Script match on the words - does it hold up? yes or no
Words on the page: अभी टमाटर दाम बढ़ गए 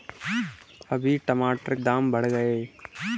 yes